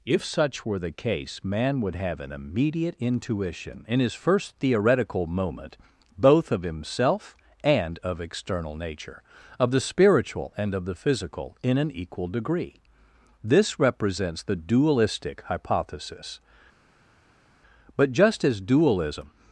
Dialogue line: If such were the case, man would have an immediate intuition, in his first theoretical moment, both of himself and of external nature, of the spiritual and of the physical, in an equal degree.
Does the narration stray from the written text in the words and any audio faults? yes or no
yes